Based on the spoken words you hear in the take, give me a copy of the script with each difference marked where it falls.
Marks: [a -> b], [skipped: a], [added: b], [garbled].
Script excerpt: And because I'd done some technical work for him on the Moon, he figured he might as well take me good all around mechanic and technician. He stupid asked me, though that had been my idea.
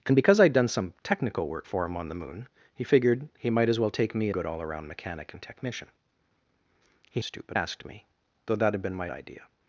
And because I'd done some technical work for him on the Moon, he figured he might as well take me good all around mechanic and technician. He stupid asked me, though that had been my idea.